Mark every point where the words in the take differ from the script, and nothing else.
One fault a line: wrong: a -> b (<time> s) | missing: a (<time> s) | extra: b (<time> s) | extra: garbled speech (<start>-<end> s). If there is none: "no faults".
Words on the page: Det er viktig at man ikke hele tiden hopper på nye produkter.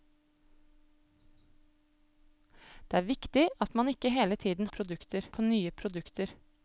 wrong: hopper -> produkter (4.7 s)